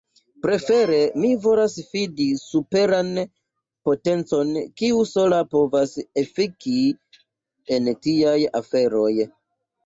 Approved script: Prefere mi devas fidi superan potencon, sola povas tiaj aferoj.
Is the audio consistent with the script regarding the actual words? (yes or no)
no